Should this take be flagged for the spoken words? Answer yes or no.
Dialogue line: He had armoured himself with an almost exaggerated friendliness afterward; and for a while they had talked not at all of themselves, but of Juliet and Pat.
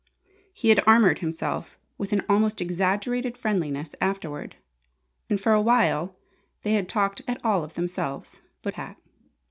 yes